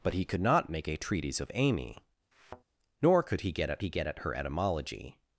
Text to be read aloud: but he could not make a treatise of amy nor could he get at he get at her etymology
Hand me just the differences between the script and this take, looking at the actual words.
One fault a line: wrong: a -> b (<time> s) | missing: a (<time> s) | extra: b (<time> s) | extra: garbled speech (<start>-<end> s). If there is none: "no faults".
no faults